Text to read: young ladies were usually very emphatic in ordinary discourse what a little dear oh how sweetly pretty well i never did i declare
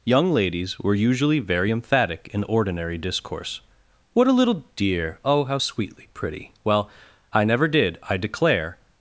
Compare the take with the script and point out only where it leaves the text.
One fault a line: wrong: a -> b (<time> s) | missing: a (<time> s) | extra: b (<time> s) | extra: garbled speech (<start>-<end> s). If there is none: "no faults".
no faults